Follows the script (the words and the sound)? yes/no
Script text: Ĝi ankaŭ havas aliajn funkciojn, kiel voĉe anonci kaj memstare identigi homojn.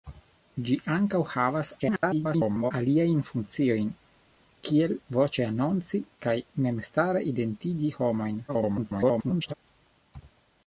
no